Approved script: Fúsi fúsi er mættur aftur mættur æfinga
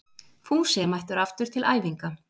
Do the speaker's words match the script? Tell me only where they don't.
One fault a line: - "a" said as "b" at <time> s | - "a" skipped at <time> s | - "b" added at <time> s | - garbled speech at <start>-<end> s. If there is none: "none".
- "fúsi" skipped at 0.8 s
- "mættur" said as "til" at 1.6 s